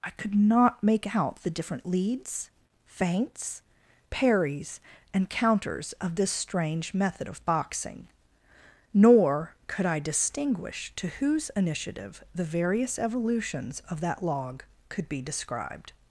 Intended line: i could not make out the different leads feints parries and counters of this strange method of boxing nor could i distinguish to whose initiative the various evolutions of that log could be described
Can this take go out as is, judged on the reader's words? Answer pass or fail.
pass